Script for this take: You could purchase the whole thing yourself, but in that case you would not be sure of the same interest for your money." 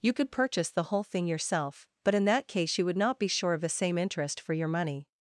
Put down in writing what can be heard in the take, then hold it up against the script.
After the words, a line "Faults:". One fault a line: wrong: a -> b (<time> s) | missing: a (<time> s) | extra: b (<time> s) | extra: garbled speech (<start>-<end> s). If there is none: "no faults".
You could purchase the whole thing yourself, but in that case you would not be sure of the same interest for your money."
Faults:
no faults